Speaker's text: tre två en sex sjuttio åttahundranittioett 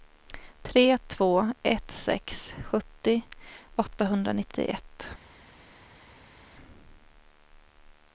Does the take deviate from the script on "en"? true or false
true